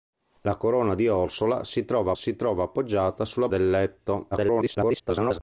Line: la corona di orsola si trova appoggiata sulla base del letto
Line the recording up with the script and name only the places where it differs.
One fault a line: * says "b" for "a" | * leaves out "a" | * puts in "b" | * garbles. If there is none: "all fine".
* puts in "si trova"
* leaves out "base"
* garbles